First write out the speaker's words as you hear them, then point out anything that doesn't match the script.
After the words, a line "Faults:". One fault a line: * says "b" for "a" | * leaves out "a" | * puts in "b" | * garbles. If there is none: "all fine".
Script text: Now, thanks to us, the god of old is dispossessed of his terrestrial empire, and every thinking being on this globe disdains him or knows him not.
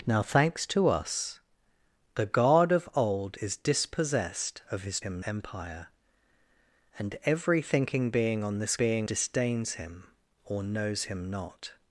Now, thanks to us, the god of old is dispossessed of his him empire, and every thinking being on this being disdains him or knows him not.
Faults:
* says "him" for "terrestrial"
* says "being" for "globe"